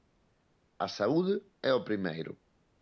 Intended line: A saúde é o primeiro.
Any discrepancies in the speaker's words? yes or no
no